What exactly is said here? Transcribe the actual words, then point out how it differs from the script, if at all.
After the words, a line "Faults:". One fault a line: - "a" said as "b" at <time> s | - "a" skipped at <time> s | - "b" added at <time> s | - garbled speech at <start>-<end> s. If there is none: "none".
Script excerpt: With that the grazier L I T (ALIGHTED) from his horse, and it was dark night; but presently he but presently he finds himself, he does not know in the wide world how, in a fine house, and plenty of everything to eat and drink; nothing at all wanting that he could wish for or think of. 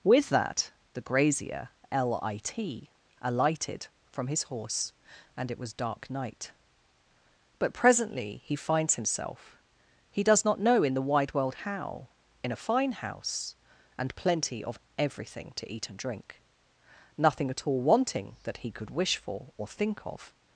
With that the grazier L I T (ALIGHTED) from his horse, and it was dark night; but presently he finds himself, he does not know in the wide world how, in a fine house, and plenty of everything to eat and drink; nothing at all wanting that he could wish for or think of.
Faults:
- "but presently he" skipped at 8.6 s